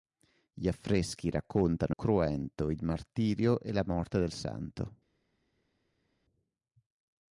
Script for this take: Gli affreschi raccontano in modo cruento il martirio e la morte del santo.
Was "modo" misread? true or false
true